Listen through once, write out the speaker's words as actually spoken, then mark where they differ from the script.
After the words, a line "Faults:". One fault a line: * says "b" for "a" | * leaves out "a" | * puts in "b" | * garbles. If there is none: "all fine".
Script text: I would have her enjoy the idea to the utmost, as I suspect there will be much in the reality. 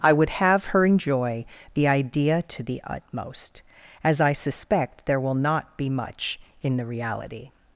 I would have her enjoy the idea to the utmost, as I suspect there will not be much in the reality.
Faults:
* puts in "not"